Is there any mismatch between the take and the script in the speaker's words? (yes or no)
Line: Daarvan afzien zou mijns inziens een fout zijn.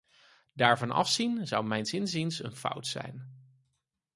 no